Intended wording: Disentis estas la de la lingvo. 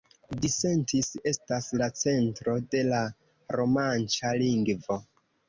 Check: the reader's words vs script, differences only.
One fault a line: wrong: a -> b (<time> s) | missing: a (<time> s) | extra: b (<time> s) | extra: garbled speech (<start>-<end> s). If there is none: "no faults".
extra: centro (2.0 s)
extra: romanĉa (3.6 s)